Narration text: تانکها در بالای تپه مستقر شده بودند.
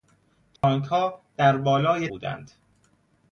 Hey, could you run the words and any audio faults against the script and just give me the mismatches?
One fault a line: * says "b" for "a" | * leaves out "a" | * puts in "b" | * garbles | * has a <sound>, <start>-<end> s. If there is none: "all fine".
* has a dropout, 0.6-0.6 s
* leaves out "تپه مستقر شده"